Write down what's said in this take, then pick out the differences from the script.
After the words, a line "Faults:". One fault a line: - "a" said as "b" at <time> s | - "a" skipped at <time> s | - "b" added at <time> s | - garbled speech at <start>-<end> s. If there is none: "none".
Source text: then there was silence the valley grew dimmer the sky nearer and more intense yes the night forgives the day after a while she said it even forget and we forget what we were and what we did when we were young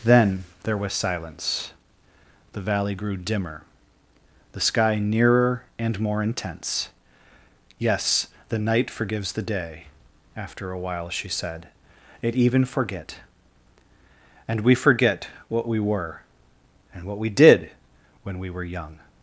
then there was silence the valley grew dimmer the sky nearer and more intense yes the night forgives the day after a while she said it even forget and we forget what we were and what we did when we were young
Faults:
none